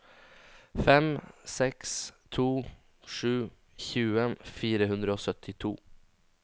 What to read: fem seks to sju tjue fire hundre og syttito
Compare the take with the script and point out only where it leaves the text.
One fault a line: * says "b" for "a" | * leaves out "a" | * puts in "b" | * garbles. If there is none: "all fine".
all fine